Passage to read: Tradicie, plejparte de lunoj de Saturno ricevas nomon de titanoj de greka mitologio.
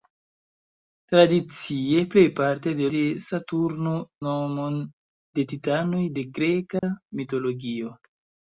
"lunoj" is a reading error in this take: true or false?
true